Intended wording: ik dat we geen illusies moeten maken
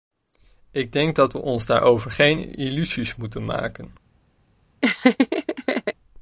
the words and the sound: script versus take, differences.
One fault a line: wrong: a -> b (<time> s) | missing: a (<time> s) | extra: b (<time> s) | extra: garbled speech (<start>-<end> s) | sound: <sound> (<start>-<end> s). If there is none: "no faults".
extra: denk (0.9 s)
extra: ons daarover (1.4 s)
sound: laugh (4.8-5.9 s)